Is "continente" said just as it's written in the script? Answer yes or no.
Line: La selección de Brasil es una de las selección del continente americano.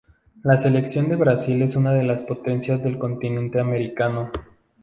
yes